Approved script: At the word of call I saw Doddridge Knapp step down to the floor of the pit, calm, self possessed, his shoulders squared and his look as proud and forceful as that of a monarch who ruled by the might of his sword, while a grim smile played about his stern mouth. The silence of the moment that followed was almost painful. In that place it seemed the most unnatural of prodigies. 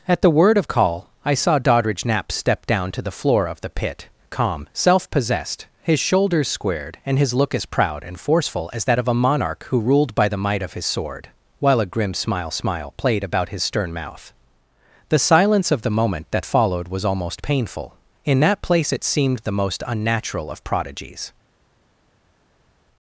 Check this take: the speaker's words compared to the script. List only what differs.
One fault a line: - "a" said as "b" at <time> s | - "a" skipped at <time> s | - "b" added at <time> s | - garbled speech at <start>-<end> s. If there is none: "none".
- "smile" added at 12.5 s